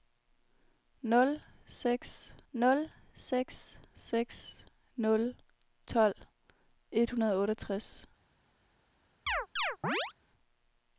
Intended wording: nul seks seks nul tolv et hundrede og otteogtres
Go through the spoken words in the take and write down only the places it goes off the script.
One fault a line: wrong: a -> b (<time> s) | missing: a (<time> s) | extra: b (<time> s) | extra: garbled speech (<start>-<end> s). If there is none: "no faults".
extra: nul seks (2.5 s)